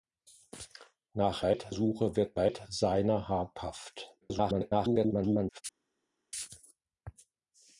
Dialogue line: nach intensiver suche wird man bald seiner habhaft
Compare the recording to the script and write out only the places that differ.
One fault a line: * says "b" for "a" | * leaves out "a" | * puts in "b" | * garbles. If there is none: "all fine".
* says "bald" for "intensiver"
* leaves out "man"
* garbles